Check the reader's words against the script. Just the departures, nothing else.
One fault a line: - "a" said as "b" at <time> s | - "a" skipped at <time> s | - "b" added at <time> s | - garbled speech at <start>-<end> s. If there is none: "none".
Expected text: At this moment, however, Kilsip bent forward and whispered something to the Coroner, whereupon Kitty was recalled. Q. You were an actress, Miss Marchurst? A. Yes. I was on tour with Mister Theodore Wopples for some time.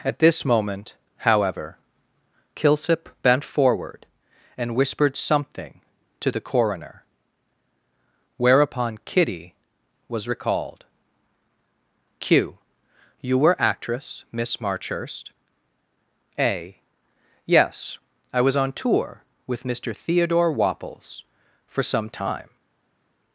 - "an" skipped at 13.6 s